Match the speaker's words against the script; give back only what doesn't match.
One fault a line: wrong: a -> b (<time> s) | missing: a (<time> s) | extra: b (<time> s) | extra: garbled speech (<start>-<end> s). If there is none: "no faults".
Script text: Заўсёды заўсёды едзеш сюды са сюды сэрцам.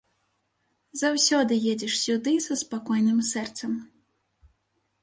missing: заўсёды (1.5 s)
wrong: сюды -> спакойным (2.6 s)